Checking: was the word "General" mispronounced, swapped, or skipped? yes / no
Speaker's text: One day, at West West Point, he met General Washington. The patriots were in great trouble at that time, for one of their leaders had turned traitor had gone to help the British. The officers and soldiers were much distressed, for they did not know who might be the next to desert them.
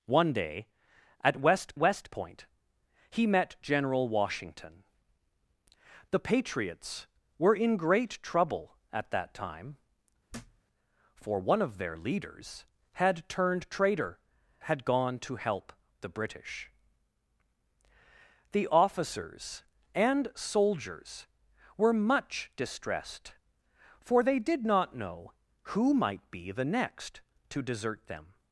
no